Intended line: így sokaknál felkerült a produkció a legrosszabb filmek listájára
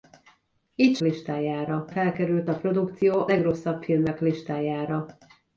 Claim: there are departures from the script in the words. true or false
true